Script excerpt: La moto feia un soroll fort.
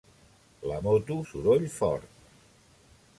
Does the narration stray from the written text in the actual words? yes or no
yes